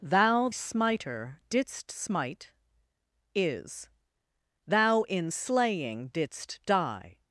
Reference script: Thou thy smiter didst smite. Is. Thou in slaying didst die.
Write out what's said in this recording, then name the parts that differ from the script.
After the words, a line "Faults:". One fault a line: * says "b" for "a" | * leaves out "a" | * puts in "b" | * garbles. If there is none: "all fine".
Thou smiter didst smite. Is. Thou in slaying didst die.
Faults:
* leaves out "thy"